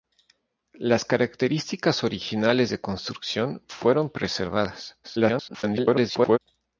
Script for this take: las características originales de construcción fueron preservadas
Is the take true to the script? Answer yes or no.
no